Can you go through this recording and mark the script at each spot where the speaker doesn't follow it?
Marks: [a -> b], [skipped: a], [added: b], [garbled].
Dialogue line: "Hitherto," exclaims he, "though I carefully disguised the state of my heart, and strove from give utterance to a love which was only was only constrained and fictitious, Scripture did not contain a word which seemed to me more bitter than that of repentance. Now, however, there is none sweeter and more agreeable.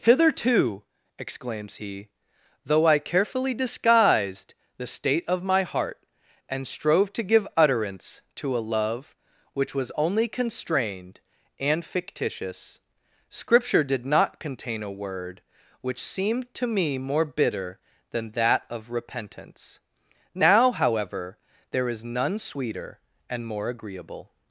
"Hitherto," exclaims he, "though I carefully disguised the state of my heart, and strove [from -> to] give utterance to a love which was only [skipped: was only] constrained and fictitious, Scripture did not contain a word which seemed to me more bitter than that of repentance. Now, however, there is none sweeter and more agreeable.